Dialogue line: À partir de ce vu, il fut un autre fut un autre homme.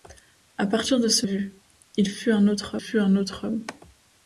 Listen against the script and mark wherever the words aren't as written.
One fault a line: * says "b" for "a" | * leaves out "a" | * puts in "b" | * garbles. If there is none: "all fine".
all fine